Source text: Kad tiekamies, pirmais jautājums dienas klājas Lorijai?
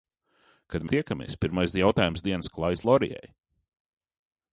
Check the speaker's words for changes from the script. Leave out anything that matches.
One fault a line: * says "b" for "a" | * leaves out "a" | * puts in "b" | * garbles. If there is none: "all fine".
all fine